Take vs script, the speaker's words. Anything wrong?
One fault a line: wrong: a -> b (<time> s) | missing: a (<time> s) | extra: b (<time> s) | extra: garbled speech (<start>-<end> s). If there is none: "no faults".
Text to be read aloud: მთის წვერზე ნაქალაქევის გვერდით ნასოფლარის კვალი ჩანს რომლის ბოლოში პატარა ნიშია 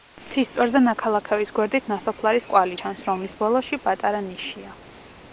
no faults